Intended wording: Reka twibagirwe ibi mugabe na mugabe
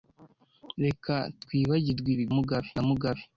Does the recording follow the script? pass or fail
pass